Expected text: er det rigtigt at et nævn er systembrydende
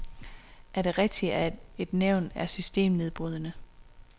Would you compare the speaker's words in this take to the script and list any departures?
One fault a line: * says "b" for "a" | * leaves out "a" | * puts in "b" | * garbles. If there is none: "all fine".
all fine